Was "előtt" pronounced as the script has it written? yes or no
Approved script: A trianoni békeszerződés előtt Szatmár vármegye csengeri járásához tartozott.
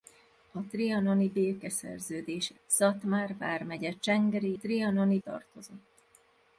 no